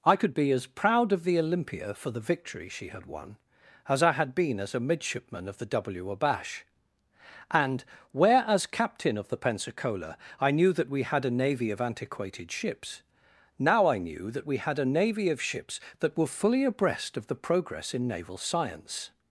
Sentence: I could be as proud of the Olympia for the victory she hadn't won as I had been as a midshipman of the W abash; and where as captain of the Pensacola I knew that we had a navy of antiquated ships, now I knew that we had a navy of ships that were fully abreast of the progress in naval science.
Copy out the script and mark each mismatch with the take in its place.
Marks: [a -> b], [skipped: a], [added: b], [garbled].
I could be as proud of the Olympia for the victory she [hadn't -> had] won as I had been as a midshipman of the W abash; and where as captain of the Pensacola I knew that we had a navy of antiquated ships, now I knew that we had a navy of ships that were fully abreast of the progress in naval science.